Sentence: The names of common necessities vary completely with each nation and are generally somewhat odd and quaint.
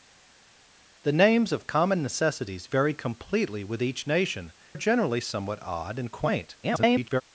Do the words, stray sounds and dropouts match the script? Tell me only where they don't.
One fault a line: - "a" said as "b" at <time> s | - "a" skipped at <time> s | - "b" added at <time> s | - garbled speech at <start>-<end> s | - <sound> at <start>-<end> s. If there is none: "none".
- "and" skipped at 4.5 s
- garbled speech at 6.6-7.2 s